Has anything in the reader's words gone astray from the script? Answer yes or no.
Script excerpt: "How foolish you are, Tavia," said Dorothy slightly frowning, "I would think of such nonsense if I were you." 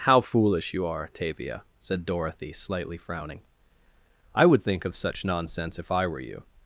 no